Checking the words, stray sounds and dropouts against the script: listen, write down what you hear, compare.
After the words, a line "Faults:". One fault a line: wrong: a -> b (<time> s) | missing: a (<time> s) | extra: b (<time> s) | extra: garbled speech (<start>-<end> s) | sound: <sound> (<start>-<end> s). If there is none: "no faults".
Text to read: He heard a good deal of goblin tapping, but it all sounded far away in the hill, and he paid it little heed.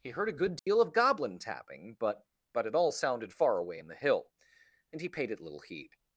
He heard a good deal of goblin tapping, but but it all sounded far away in the hill, and he paid it little heed.
Faults:
sound: dropout (0.6-0.7 s)
extra: but (2.5 s)